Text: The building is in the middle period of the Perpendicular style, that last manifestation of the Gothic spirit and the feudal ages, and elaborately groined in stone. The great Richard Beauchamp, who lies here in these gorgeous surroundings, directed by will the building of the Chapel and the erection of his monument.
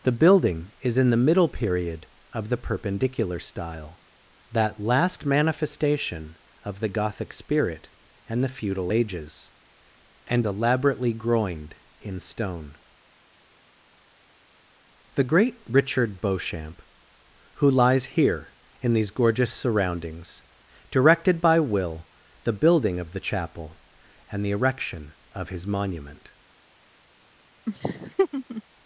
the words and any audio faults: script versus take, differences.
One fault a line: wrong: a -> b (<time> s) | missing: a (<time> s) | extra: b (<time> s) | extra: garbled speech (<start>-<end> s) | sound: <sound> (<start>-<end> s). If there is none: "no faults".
sound: laugh (27.7-28.6 s)